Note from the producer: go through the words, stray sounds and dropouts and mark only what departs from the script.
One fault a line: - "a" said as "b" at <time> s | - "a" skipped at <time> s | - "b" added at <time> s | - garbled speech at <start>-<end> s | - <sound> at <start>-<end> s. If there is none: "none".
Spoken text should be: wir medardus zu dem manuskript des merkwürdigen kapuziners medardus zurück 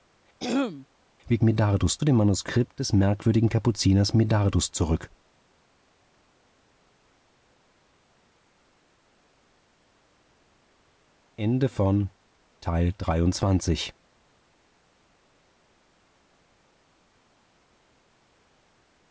- throat clearing at 0.4-0.9 s